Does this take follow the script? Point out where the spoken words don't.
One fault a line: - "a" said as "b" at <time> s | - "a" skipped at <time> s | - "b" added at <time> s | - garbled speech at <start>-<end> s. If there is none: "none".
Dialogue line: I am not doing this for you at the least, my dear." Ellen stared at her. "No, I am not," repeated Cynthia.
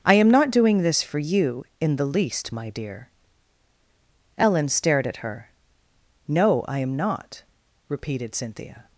- "at" said as "in" at 1.8 s